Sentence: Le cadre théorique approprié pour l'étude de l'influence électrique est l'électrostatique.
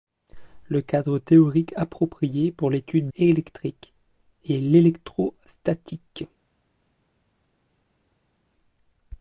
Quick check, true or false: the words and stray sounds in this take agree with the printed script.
false